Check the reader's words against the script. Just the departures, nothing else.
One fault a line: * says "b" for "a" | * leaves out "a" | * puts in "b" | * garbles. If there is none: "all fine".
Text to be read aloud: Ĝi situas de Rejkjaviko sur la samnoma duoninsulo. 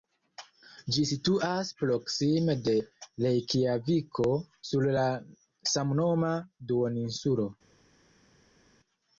* puts in "proksime"